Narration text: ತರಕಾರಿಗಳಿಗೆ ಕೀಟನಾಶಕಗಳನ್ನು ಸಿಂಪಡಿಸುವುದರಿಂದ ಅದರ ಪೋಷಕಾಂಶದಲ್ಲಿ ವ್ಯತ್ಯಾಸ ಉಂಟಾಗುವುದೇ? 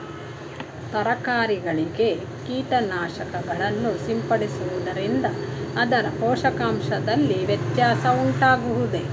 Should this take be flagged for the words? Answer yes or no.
no